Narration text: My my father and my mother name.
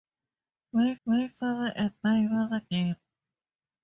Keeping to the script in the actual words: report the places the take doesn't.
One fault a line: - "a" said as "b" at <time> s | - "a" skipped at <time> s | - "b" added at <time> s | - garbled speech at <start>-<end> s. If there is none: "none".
none